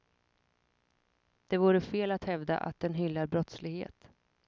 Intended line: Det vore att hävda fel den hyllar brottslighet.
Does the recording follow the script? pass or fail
fail